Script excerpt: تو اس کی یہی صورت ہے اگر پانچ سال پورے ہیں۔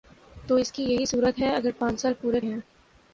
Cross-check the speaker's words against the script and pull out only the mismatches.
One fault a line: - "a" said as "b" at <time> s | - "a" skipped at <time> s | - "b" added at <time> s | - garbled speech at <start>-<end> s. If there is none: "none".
none